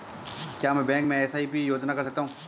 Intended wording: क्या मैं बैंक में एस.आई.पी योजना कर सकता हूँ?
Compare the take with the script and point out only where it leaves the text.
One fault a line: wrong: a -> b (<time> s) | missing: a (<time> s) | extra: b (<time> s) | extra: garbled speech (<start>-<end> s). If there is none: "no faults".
no faults